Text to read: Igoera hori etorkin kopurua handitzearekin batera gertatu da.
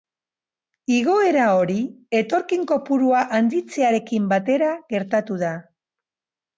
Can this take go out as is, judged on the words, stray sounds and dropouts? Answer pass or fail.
pass